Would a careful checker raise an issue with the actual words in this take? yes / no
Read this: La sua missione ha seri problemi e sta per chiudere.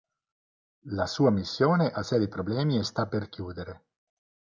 no